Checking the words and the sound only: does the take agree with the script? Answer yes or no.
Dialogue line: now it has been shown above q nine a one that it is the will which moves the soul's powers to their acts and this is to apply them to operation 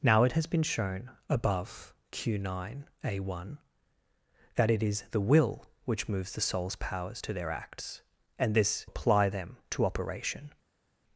no